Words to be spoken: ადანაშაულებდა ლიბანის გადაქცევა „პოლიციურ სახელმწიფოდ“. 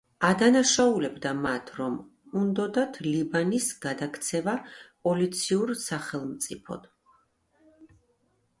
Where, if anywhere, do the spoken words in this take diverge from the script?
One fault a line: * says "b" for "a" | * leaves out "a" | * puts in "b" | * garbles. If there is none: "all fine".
* puts in "მათ რომ უნდოდათ"